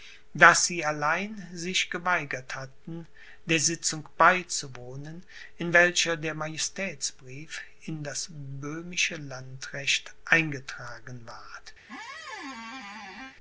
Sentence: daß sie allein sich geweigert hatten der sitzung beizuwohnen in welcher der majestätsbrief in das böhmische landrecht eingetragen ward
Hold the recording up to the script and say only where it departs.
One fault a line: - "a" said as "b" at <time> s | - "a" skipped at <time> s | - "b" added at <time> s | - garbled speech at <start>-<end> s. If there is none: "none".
none